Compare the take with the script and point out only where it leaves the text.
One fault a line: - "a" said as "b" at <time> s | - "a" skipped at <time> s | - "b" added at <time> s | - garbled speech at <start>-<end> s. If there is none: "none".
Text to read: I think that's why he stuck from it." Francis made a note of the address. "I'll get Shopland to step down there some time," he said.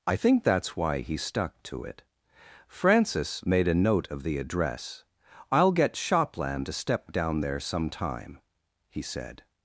- "from" said as "to" at 1.6 s